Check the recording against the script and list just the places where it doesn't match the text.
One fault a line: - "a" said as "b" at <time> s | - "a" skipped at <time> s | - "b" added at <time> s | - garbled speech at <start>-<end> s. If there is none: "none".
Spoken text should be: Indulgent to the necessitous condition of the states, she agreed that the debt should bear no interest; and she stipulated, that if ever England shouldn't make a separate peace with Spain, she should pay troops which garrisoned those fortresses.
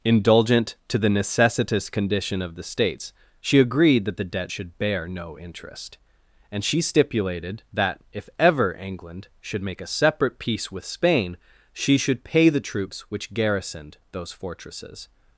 - "shouldn't" said as "should" at 9.4 s
- "the" added at 12.5 s